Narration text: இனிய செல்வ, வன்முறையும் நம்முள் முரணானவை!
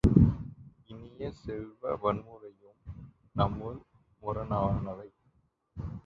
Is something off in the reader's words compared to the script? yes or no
no